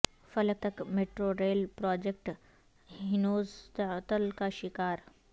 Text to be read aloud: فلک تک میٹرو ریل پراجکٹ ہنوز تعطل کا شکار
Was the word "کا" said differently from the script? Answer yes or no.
no